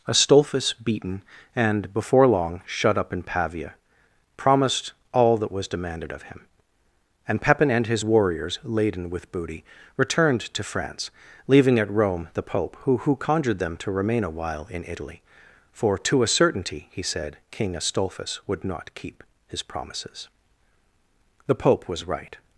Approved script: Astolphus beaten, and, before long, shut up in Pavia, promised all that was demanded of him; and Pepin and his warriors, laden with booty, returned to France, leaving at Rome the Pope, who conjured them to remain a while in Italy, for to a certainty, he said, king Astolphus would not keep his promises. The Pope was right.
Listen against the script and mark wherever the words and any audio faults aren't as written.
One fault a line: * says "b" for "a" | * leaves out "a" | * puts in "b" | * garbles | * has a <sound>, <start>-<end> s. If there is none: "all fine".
* puts in "who"